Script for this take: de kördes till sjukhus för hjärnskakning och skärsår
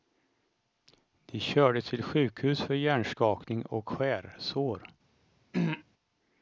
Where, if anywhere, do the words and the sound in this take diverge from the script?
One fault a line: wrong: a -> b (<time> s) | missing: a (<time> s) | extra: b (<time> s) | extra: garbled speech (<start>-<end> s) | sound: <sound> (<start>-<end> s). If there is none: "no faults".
sound: throat clearing (5.5-5.8 s)